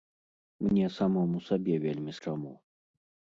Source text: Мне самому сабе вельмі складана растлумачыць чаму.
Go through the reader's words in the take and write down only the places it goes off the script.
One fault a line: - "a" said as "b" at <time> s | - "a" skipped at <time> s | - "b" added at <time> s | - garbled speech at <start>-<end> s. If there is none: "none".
- "складана растлумачыць" skipped at 2.1 s